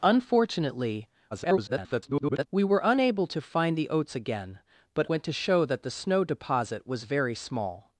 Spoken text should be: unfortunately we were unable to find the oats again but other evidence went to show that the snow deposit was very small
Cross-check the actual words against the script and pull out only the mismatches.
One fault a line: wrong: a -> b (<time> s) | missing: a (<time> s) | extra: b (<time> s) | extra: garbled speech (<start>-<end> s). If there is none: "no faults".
extra: garbled speech (1.3-2.5 s)
missing: other evidence (5.1 s)